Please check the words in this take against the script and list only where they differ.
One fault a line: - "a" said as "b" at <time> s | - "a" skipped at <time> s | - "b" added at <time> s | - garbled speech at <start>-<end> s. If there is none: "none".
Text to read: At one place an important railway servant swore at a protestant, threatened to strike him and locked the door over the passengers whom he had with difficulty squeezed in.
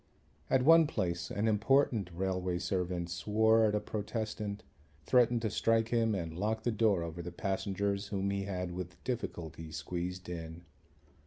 none